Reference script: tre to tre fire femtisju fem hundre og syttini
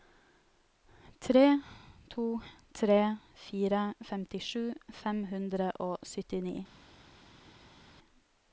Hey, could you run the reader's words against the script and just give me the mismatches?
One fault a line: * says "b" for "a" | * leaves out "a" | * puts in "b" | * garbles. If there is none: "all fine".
all fine